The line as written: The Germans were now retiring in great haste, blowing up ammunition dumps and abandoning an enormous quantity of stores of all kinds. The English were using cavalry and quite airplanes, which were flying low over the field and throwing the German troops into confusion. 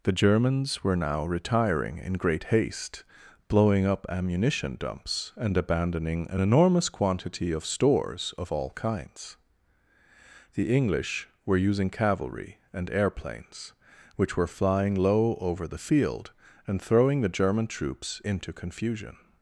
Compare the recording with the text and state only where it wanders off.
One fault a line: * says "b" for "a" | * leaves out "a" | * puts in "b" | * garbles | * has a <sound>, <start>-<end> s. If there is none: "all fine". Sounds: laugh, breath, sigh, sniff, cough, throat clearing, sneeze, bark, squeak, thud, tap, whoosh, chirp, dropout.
* leaves out "quite"